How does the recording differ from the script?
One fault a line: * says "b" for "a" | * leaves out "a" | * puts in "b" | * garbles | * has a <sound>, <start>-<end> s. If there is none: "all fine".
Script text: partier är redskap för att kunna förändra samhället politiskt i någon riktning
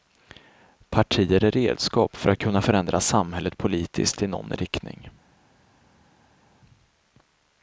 all fine